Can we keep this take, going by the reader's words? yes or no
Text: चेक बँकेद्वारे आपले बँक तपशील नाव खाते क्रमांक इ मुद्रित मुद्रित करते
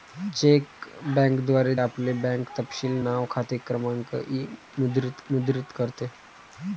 yes